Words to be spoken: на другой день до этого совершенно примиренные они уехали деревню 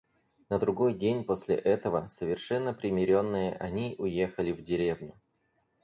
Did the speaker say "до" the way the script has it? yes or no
no